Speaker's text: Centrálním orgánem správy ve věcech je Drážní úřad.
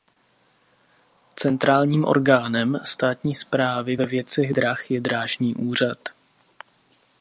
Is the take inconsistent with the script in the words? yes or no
yes